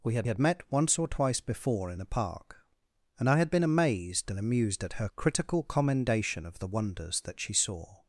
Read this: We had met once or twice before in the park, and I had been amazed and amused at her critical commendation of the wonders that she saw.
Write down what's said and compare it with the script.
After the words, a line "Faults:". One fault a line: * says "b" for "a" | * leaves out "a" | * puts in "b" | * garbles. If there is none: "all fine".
We had had met once or twice before in the park, and I had been amazed and amused at her critical commendation of the wonders that she saw.
Faults:
* puts in "had"